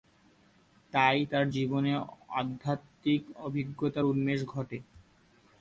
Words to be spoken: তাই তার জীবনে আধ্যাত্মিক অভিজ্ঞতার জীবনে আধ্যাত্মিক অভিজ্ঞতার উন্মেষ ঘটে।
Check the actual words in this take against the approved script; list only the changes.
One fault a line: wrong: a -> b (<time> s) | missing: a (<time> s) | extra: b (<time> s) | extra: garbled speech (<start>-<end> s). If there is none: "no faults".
missing: জীবনে আধ্যাত্মিক অভিজ্ঞতার (4.1 s)